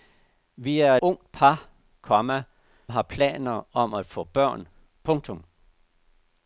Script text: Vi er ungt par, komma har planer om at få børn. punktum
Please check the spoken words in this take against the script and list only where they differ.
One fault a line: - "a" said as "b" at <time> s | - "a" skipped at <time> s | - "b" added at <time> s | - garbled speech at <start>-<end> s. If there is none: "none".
none